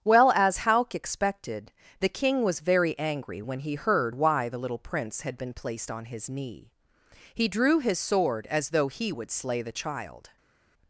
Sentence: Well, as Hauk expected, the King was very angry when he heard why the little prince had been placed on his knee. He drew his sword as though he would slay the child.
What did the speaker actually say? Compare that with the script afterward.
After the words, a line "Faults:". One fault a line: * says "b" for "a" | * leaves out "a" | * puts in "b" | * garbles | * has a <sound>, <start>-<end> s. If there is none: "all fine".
Well, as Hauk expected, the King was very angry when he heard why the little prince had been placed on his knee. He drew his sword as though he would slay the child.
Faults:
all fine